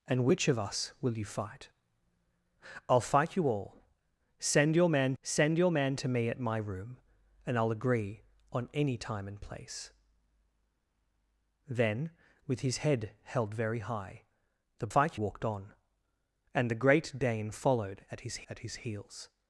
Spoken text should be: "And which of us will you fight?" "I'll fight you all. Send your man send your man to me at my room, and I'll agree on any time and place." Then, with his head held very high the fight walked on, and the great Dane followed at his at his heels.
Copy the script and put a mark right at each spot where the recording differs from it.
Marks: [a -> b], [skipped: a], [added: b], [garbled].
"And which of us will you fight?" "I'll fight you all. Send your man send your man to me at my room, and I'll agree on any time and place." Then, with his head held very high the fight walked on, and the great Dane followed at his at his heels.